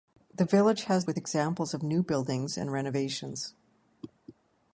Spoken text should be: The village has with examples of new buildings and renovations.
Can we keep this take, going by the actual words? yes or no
yes